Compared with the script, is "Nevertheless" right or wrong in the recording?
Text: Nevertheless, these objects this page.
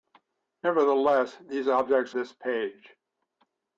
right